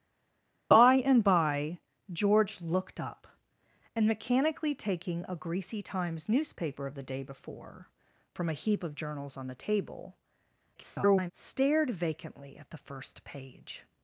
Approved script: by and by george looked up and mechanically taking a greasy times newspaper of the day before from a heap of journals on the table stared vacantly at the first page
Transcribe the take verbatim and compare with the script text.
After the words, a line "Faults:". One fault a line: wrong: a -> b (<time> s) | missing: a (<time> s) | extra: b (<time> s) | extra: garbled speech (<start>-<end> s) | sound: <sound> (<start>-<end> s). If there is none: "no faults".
by and by george looked up and mechanically taking a greasy times newspaper of the day before from a heap of journals on the table [garbled] stared vacantly at the first page
Faults:
extra: garbled speech (10.7-11.3 s)